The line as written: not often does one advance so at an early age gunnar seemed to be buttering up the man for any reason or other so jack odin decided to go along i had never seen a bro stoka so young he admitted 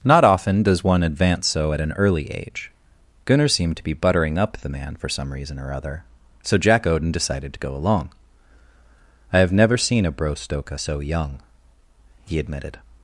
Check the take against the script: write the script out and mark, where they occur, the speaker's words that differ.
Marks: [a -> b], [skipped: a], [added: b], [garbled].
not often does one advance so at an early age gunnar seemed to be buttering up the man for [any -> some] reason or other so jack odin decided to go along i [had -> have] never seen a bro stoka so young he admitted